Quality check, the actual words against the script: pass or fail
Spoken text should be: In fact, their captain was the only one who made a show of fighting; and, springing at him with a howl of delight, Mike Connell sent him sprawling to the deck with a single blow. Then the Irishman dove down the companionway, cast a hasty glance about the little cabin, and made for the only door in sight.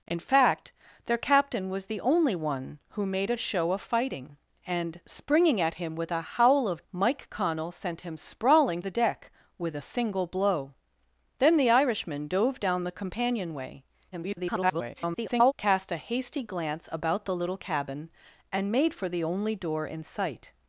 fail